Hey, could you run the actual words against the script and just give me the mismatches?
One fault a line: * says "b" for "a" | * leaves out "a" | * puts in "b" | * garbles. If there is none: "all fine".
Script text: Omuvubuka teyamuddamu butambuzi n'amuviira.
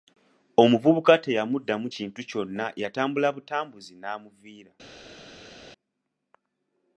* puts in "kintu kyonna yatambula"